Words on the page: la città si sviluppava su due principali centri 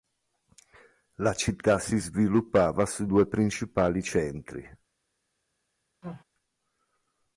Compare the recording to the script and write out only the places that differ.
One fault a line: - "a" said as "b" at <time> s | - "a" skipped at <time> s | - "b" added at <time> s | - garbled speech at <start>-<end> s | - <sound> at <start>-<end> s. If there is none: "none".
- sneeze at 6.0-6.2 s